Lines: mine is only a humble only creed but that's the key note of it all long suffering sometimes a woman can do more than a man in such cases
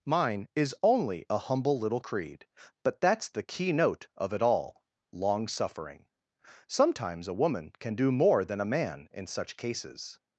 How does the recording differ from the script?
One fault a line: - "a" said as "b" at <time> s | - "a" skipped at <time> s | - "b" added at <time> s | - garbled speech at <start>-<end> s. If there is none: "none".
- "only" said as "little" at 1.8 s